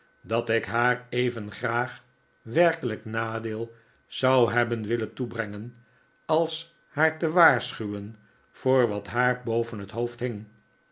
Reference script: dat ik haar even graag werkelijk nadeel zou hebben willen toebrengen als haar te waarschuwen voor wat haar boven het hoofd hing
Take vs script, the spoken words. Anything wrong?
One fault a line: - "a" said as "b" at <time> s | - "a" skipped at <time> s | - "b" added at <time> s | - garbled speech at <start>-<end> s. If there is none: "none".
none